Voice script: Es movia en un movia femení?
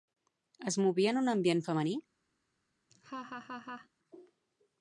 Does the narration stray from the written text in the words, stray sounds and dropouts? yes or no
yes